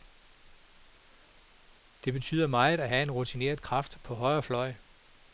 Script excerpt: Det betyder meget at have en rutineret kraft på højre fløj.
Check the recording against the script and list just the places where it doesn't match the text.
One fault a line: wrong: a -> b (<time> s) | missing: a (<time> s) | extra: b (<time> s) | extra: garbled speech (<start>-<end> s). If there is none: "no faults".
no faults